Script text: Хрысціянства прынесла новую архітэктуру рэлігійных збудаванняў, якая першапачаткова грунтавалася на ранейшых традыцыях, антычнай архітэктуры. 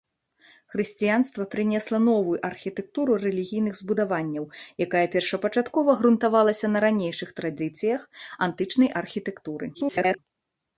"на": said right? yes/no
yes